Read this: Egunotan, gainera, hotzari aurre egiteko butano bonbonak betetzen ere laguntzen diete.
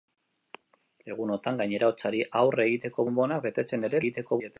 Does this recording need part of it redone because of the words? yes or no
yes